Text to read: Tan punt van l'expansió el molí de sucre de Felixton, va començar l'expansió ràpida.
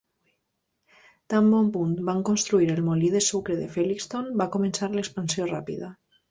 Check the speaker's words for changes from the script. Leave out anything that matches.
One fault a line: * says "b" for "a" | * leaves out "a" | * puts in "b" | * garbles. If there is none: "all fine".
* puts in "bon"
* says "construir" for "l'expansió"